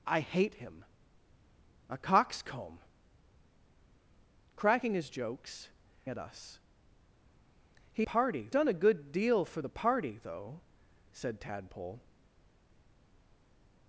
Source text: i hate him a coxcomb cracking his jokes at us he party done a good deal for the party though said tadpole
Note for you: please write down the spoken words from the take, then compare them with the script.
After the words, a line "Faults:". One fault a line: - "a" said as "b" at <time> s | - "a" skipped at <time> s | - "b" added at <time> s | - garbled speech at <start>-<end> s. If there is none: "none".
i hate him a coxcomb cracking his jokes at us he party done a good deal for the party though said tadpole
Faults:
none